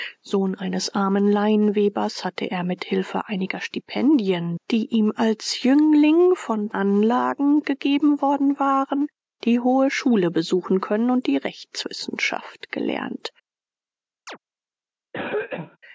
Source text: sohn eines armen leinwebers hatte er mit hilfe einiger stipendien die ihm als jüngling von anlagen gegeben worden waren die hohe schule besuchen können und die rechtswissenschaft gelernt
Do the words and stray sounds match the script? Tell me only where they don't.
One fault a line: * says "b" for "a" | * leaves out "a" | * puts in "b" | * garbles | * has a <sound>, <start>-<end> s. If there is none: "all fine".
* has a chirp, 14.3-14.4 s
* has a cough, 15.1-15.8 s